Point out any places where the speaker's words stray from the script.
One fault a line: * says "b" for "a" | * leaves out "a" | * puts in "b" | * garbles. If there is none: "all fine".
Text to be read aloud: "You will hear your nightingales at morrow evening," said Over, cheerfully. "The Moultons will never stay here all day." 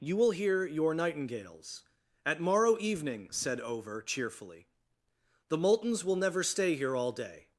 all fine